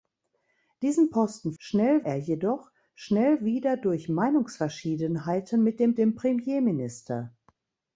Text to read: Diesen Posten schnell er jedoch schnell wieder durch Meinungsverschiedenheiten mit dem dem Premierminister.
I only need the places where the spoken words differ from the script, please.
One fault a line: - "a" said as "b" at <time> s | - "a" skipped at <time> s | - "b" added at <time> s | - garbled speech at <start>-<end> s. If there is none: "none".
none